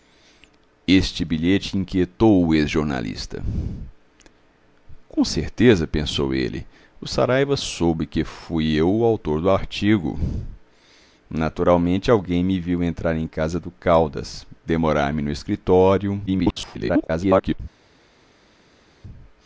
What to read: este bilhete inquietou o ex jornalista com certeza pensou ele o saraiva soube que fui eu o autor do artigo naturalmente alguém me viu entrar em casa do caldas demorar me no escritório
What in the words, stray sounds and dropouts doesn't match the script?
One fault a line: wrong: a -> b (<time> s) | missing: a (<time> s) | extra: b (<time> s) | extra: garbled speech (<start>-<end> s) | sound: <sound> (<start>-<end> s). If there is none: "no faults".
extra: garbled speech (16.3-17.6 s)